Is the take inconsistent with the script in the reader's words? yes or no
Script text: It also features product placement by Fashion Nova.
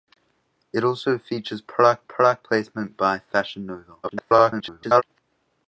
yes